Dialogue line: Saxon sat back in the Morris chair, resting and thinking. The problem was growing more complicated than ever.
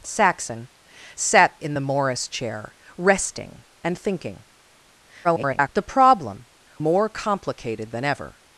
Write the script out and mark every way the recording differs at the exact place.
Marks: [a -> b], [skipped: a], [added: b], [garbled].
Saxon sat [skipped: back] in the Morris chair, resting and thinking. [garbled] The problem [skipped: was growing] more complicated than ever.